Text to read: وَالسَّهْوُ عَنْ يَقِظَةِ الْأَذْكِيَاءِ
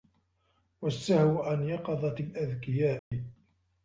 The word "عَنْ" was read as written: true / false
true